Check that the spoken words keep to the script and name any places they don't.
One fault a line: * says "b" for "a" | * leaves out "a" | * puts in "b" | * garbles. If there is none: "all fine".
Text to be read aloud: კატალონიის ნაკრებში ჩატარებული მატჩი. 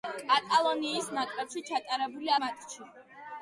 all fine